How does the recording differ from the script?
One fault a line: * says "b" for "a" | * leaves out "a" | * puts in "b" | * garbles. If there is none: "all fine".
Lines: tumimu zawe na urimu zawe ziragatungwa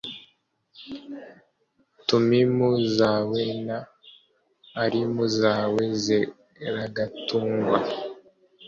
all fine